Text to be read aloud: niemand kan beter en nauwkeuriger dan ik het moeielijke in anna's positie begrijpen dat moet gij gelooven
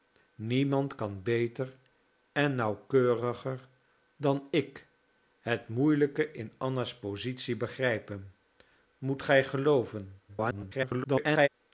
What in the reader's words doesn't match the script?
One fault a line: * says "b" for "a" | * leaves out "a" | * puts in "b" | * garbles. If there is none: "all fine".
* leaves out "dat"
* garbles